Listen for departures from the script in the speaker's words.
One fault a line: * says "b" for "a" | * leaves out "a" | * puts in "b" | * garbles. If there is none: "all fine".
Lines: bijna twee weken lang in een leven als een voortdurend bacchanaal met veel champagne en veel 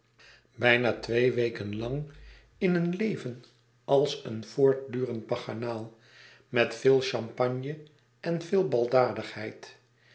all fine